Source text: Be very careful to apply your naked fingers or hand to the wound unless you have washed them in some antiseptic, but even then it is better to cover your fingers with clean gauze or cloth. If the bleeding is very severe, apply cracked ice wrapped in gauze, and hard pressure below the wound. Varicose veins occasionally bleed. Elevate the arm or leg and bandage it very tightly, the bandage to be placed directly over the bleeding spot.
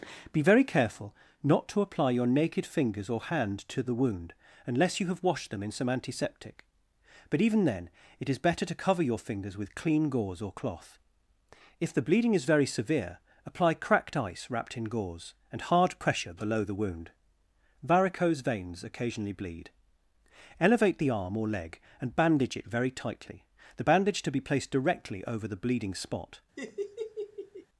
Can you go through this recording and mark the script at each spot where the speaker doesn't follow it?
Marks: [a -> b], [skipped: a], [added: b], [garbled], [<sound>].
Be very careful [added: not] to apply your naked fingers or hand to the wound unless you have washed them in some antiseptic, but even then it is better to cover your fingers with clean gauze or cloth. If the bleeding is very severe, apply cracked ice wrapped in gauze, and hard pressure below the wound. Varicose veins occasionally bleed. Elevate the arm or leg and bandage it very tightly, the bandage to be placed directly over the bleeding spot. [laugh]